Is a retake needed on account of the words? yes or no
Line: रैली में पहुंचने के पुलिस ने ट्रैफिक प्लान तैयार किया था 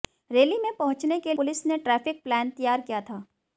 no